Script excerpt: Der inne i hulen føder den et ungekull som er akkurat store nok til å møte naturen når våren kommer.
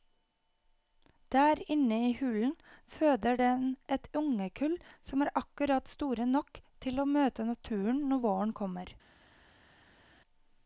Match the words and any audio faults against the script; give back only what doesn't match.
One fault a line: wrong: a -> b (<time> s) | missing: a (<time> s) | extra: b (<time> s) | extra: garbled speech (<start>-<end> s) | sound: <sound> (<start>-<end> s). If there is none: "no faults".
no faults